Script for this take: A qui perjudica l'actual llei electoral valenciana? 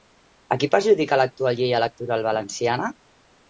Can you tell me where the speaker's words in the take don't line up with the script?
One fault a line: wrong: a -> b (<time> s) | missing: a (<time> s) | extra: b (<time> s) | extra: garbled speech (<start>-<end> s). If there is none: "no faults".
no faults